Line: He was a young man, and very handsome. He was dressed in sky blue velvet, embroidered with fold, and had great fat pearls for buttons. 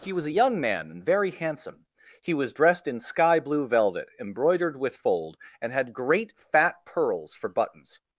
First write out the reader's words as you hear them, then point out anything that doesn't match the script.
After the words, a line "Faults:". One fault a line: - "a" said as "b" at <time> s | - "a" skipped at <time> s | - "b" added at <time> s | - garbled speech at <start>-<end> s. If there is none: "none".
He was a young man, and very handsome. He was dressed in sky blue velvet, embroidered with fold, and had great fat pearls for buttons.
Faults:
none